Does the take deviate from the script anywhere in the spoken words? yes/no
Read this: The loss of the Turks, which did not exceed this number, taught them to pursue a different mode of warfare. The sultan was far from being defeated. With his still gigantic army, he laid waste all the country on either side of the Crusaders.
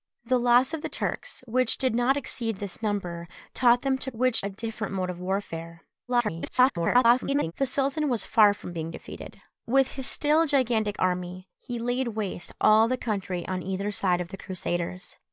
yes